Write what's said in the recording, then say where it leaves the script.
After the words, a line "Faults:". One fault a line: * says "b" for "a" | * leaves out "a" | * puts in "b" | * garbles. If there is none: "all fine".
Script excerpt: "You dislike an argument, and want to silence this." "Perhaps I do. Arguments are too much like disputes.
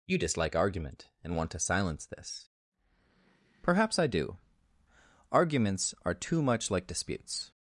"You dislike argument, and want to silence this." "Perhaps I do. Arguments are too much like disputes.
Faults:
* leaves out "an"